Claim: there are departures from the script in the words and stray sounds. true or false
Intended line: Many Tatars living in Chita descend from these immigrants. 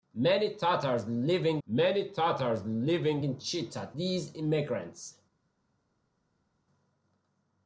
true